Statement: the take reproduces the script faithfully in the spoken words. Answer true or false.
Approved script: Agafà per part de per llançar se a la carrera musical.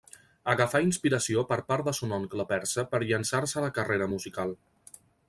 false